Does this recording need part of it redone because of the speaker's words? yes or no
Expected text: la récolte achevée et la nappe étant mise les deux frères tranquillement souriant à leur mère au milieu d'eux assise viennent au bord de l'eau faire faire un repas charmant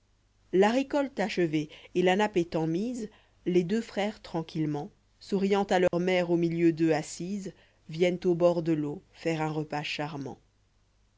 yes